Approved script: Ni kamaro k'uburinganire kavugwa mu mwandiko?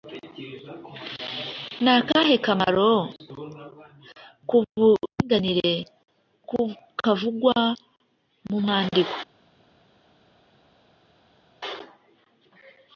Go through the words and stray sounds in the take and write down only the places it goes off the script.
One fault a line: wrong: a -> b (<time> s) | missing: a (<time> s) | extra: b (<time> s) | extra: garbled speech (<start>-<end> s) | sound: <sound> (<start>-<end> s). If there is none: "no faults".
extra: akahe (2.0 s)